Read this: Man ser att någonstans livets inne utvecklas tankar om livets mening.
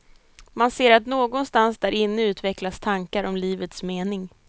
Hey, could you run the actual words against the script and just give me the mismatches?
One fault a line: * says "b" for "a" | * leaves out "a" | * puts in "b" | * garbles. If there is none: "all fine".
* says "där" for "livets"